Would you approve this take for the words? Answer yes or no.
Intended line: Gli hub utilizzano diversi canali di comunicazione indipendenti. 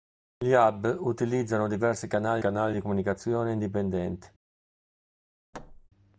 no